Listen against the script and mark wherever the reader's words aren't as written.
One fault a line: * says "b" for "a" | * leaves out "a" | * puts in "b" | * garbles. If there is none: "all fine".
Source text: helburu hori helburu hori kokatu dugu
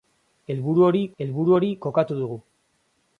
all fine